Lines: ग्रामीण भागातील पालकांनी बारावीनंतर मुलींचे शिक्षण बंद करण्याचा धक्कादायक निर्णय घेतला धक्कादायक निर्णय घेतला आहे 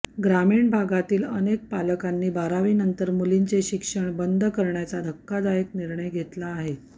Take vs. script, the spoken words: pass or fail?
fail